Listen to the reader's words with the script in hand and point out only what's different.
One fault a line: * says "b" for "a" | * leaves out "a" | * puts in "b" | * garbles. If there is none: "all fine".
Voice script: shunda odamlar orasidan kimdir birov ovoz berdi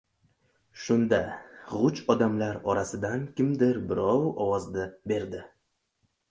* puts in "g‘uj"